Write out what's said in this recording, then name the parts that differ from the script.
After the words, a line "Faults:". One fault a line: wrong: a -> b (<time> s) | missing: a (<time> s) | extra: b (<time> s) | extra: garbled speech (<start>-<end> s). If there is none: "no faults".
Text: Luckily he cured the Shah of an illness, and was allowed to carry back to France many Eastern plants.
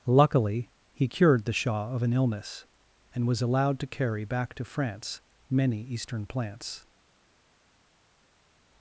Luckily he cured the Shah of an illness, and was allowed to carry back to France many Eastern plants.
Faults:
no faults